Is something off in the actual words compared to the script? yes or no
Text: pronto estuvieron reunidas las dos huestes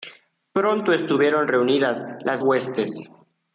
yes